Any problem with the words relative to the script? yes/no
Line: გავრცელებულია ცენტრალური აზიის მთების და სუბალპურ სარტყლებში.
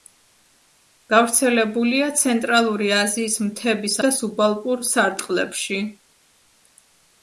no